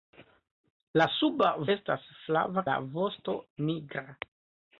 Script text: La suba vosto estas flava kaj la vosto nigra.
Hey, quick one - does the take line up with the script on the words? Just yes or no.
no